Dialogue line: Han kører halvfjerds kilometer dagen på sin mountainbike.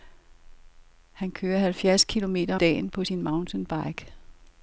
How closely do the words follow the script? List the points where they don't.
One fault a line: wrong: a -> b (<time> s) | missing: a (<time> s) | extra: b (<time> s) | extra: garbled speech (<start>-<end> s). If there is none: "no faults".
no faults